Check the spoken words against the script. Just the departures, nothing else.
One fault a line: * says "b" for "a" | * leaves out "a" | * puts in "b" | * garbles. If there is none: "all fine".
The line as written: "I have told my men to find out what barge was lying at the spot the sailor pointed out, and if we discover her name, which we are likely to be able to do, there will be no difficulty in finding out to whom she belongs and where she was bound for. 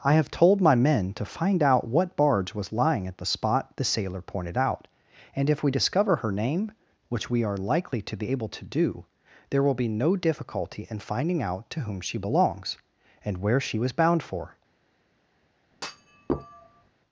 all fine